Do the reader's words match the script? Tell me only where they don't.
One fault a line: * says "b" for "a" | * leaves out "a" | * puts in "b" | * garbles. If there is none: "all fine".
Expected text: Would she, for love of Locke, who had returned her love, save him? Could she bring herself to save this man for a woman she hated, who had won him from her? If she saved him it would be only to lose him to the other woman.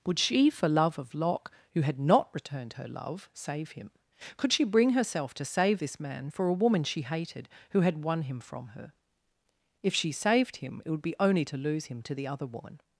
* puts in "not"